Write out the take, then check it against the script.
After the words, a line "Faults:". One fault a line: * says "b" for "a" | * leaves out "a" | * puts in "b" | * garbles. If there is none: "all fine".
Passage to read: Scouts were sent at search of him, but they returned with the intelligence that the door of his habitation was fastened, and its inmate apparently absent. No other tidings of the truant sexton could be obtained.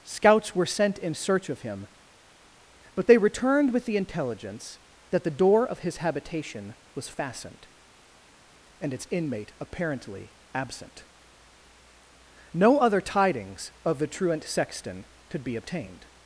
Scouts were sent in search of him, but they returned with the intelligence that the door of his habitation was fastened, and its inmate apparently absent. No other tidings of the truant sexton could be obtained.
Faults:
* says "in" for "at"